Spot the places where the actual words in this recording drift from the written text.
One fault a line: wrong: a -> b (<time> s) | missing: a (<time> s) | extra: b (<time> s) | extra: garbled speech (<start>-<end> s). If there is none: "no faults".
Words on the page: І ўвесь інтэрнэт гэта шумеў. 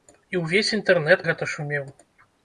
no faults